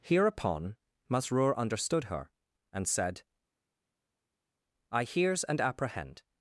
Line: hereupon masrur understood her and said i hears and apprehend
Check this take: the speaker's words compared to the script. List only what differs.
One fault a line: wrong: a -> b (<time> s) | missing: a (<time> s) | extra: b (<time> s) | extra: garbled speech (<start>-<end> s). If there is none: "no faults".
no faults